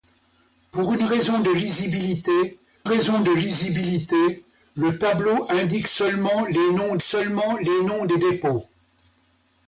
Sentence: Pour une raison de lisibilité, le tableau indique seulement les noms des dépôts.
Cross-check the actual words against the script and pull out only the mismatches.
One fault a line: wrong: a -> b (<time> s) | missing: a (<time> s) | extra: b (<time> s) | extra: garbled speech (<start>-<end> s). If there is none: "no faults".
extra: raison de lisibilité (2.8 s)
extra: seulement les noms (7.0 s)